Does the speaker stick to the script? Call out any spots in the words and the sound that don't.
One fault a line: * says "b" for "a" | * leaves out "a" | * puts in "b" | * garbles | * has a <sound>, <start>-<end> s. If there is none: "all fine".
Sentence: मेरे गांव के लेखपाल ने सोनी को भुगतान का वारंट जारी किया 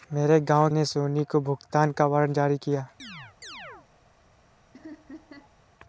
* leaves out "के लेखपाल"
* has a chirp, 3.0-3.9 s
* has a laugh, 4.7-5.5 s